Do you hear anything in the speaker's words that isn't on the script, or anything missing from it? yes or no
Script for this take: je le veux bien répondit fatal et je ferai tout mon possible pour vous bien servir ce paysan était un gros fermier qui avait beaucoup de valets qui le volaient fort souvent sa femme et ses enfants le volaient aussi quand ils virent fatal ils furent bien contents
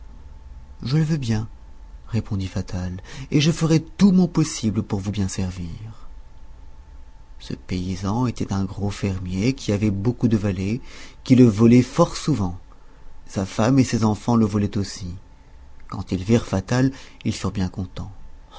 no